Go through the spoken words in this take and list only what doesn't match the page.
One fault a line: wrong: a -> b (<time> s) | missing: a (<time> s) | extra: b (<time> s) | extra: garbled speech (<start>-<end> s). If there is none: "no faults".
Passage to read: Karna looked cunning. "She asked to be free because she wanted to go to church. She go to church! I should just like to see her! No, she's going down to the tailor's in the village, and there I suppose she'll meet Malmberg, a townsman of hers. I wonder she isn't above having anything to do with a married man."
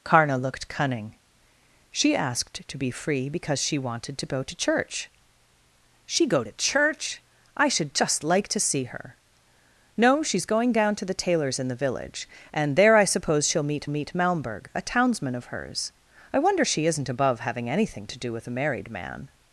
extra: meet (13.9 s)